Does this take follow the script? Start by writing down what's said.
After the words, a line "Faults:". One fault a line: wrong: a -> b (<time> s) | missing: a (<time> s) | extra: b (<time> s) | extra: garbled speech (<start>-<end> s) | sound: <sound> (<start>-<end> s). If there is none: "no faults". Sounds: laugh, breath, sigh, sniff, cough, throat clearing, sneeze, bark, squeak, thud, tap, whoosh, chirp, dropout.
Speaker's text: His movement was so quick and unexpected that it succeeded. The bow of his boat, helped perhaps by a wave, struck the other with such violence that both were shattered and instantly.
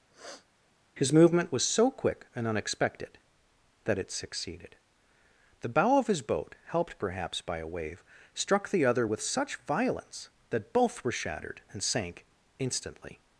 His movement was so quick and unexpected that it succeeded. The bow of his boat, helped perhaps by a wave, struck the other with such violence that both were shattered and sank instantly.
Faults:
sound: sniff (0.1-0.5 s)
extra: sank (11.8 s)